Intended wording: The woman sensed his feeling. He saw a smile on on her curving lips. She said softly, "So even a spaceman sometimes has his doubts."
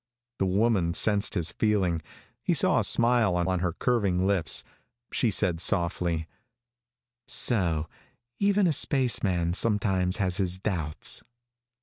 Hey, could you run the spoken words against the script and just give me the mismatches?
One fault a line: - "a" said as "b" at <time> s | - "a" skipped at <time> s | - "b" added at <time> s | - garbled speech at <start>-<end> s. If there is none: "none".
none